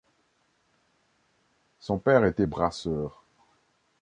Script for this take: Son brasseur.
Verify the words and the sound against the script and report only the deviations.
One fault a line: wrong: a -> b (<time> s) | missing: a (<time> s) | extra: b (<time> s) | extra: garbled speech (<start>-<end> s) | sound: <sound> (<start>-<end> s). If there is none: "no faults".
extra: père était (2.0 s)